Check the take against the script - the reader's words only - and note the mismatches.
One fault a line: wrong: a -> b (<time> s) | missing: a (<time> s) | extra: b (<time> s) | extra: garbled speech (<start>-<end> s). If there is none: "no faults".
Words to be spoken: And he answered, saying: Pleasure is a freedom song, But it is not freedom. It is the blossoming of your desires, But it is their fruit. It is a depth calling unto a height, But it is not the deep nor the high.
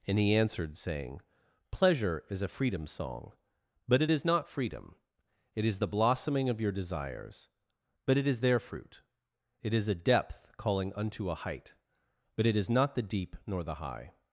no faults